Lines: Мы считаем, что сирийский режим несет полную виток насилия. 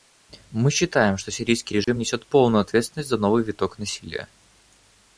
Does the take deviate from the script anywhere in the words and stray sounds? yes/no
yes